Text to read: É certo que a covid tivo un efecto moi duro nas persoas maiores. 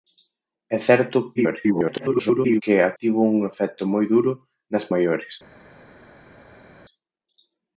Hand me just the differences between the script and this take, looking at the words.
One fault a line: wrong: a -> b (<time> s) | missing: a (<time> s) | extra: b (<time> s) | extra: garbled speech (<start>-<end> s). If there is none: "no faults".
extra: garbled speech (1.4-2.6 s)
missing: covid (2.9 s)
missing: persoas (4.8 s)